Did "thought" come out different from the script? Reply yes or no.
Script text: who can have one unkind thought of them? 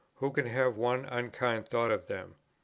no